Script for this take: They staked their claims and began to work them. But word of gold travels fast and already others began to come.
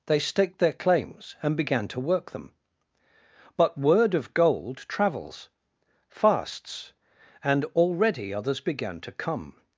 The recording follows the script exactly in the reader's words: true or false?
false